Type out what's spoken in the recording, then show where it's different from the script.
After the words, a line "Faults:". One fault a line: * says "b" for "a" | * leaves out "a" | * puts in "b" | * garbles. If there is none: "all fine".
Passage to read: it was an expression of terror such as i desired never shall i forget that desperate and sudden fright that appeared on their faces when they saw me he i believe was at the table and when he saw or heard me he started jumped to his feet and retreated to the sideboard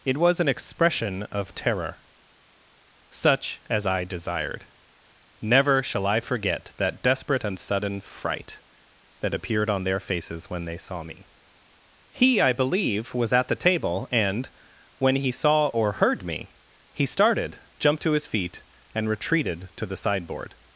it was an expression of terror such as i desired never shall i forget that desperate and sudden fright that appeared on their faces when they saw me he i believe was at the table and when he saw or heard me he started jumped to his feet and retreated to the sideboard
Faults:
all fine